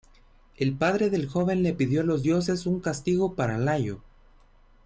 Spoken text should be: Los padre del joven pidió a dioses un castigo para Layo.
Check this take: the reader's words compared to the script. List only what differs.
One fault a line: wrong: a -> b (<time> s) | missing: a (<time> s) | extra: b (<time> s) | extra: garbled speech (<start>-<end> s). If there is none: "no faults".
wrong: Los -> El (0.6 s)
extra: le (1.6 s)
extra: los (2.0 s)